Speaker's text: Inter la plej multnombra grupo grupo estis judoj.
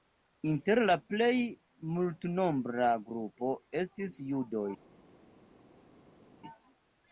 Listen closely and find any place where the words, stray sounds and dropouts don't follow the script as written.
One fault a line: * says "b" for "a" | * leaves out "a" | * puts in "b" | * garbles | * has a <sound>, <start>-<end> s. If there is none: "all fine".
* leaves out "grupo"